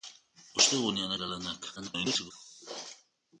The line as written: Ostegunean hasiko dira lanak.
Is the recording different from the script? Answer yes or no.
yes